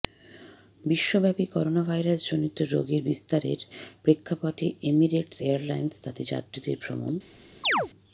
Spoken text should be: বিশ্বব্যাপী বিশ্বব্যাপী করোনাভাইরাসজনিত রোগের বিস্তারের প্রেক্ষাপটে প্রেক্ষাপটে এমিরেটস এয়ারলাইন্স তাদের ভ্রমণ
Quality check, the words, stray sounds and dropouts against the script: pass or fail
fail